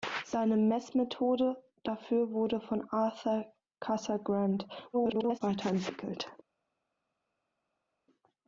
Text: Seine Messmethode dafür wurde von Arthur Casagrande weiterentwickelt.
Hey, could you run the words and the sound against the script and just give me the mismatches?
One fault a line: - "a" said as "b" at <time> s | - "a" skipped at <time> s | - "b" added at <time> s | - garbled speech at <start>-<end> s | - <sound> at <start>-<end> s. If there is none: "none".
- garbled speech at 4.9-5.4 s